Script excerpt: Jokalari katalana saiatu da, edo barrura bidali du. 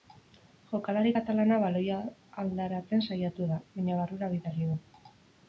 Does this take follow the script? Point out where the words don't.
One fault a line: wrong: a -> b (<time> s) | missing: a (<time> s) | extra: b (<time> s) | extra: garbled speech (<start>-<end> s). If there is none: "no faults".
extra: baloia aldaratzen (1.6 s)
wrong: edo -> baina (3.8 s)